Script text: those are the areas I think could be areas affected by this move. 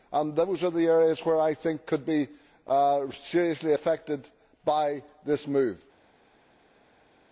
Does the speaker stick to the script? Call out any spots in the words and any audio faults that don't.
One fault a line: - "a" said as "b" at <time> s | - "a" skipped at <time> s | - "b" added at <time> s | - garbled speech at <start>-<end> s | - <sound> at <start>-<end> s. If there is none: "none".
- "which" added at 1.2 s
- "areas" said as "seriously" at 3.1 s